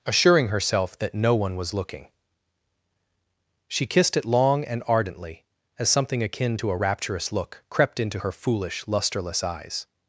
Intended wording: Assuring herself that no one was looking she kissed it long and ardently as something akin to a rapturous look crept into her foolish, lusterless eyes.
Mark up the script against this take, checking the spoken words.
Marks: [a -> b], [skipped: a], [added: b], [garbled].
Assuring herself that no one was looking she kissed it long and ardently as something akin to a rapturous look crept into her foolish, lusterless eyes.